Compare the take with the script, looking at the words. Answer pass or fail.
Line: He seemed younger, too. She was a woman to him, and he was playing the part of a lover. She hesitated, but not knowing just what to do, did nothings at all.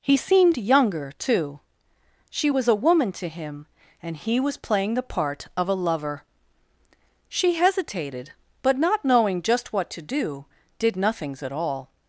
pass